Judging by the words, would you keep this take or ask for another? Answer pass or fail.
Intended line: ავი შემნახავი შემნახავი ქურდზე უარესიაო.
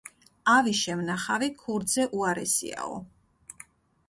fail